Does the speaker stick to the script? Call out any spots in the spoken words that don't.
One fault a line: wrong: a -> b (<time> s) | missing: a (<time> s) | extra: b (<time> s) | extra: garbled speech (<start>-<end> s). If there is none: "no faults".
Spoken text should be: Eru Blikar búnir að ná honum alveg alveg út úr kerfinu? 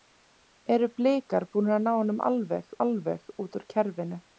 no faults